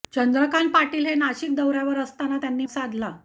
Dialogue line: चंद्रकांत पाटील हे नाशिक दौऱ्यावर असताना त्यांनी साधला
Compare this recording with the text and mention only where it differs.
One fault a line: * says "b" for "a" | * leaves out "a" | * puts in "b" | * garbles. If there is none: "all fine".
all fine